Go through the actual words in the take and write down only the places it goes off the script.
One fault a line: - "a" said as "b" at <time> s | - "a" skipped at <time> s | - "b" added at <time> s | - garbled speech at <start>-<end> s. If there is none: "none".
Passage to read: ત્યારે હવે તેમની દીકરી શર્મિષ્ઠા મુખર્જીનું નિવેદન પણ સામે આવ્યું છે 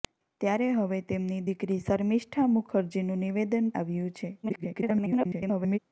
- "પણ સામે" skipped at 3.7 s
- garbled speech at 4.4-5.8 s